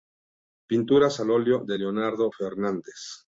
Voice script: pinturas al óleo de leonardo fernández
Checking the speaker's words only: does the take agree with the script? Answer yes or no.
yes